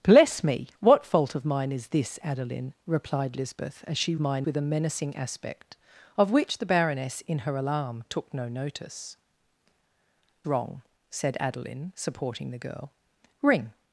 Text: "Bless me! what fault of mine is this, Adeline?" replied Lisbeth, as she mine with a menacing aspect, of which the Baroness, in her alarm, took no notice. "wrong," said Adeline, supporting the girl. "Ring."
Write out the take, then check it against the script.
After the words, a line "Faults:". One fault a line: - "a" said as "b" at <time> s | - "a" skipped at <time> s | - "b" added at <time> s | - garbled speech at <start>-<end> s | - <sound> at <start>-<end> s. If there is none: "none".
"Bless me! what fault of mine is this, Adeline?" replied Lisbeth, as she mine with a menacing aspect, of which the Baroness, in her alarm, took no notice. "wrong," said Adeline, supporting the girl. "Ring."
Faults:
none